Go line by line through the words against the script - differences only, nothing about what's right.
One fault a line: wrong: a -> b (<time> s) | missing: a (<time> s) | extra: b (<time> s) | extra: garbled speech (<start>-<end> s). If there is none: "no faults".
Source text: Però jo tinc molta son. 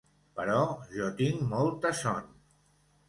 no faults